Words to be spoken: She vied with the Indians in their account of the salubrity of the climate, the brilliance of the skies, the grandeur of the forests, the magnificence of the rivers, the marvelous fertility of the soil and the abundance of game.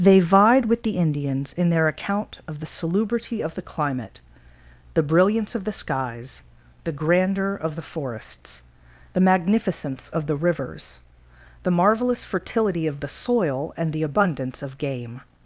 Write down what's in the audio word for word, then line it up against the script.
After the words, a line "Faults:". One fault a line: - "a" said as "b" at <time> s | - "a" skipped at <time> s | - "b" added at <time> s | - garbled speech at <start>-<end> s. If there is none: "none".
They vied with the Indians in their account of the salubrity of the climate, the brilliance of the skies, the grandeur of the forests, the magnificence of the rivers, the marvelous fertility of the soil and the abundance of game.
Faults:
- "She" said as "They" at 0.0 s